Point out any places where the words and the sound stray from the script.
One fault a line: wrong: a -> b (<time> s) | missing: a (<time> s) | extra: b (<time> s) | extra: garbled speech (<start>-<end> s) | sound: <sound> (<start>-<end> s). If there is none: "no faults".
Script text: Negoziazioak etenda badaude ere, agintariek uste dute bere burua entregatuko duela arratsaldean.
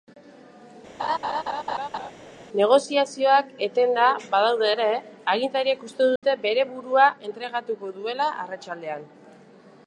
sound: laugh (1.0-2.1 s)
sound: dropout (6.2-6.2 s)